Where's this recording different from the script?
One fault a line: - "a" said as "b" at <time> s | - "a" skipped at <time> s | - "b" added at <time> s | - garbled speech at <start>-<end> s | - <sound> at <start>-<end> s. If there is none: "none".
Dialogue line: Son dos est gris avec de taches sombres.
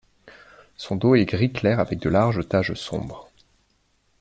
- "clair" added at 1.5 s
- "larges" added at 2.1 s